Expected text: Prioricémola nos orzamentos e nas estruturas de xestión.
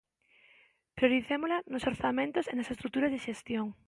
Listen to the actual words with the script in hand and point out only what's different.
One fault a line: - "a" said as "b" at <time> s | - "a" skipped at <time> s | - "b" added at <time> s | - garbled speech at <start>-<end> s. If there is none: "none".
none